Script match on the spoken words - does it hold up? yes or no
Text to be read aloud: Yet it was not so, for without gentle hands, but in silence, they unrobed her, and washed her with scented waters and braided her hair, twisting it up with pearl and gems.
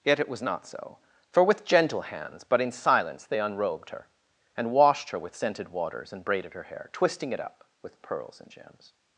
no